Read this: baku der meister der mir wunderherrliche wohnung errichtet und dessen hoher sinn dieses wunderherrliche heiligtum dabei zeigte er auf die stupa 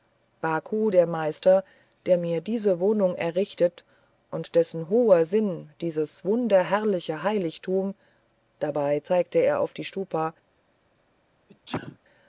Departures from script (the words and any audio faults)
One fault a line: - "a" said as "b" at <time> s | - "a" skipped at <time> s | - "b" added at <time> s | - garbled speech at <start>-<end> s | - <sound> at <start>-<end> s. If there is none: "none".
- "wunderherrliche" said as "diese" at 2.4 s
- sneeze at 11.5-12.0 s